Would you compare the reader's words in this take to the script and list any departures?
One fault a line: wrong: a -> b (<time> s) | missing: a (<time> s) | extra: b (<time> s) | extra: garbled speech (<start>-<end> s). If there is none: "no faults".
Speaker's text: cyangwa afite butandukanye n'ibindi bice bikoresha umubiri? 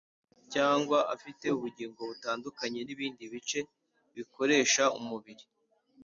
extra: ubugingo (1.6 s)